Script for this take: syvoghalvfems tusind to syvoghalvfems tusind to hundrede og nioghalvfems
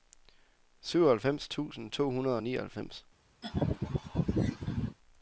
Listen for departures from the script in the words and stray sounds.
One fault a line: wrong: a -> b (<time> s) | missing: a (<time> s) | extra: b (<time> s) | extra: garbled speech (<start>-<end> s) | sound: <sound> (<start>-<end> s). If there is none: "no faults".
missing: syvoghalvfems tusind to (2.1 s)
sound: laugh (3.4-5.0 s)